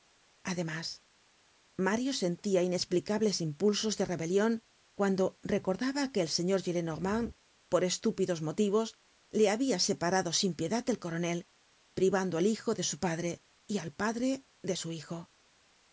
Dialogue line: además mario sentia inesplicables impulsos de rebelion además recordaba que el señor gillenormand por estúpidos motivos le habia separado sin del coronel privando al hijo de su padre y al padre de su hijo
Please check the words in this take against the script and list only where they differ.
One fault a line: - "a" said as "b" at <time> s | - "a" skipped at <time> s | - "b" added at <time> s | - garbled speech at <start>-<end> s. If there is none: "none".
- "además" said as "cuando" at 5.0 s
- "piedad" added at 10.6 s